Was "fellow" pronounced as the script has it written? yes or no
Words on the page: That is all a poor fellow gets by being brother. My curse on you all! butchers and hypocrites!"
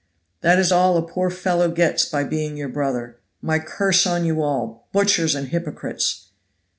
yes